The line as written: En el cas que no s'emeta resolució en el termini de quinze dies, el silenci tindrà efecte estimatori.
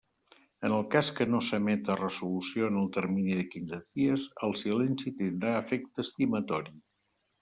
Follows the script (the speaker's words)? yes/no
yes